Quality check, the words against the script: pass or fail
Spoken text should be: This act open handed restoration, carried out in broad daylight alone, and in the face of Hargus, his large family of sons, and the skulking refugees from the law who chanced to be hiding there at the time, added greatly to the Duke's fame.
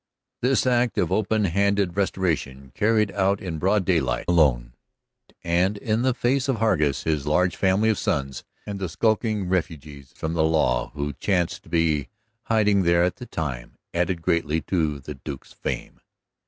fail